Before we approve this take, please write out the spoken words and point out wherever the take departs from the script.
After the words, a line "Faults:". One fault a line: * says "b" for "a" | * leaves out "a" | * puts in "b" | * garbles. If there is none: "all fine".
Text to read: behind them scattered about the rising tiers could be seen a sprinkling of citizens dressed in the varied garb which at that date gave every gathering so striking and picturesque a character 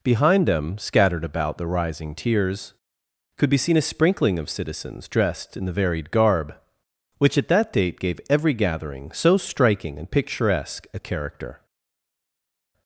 behind them scattered about the rising tiers could be seen a sprinkling of citizens dressed in the varied garb which at that date gave every gathering so striking and picturesque a character
Faults:
all fine